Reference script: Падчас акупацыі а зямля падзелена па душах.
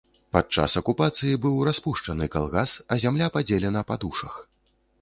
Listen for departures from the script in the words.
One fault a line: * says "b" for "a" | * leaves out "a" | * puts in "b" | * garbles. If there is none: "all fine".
* puts in "быў распушчаны калгас"